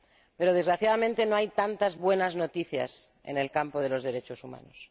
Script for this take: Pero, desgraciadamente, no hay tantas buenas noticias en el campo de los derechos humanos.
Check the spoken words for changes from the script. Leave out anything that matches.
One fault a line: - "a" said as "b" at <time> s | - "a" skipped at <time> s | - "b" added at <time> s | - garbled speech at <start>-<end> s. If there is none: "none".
none